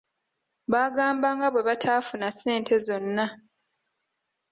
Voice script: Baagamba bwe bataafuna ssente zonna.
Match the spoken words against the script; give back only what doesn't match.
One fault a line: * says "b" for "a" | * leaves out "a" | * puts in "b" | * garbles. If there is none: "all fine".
* puts in "nga"